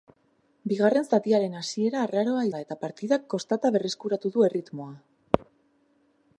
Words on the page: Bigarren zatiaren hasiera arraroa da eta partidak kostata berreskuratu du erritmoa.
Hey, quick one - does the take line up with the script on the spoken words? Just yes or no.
yes